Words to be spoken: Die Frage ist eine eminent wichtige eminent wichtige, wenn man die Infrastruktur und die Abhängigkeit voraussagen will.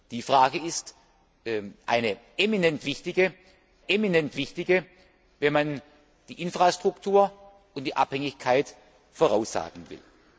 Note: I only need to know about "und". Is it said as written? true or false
true